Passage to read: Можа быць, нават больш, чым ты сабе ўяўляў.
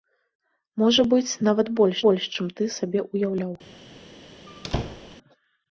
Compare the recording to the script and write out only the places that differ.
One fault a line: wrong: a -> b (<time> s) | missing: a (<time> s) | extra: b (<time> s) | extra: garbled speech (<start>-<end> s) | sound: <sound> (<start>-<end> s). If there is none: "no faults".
extra: больш (2.0 s)
sound: squeak (4.5-5.2 s)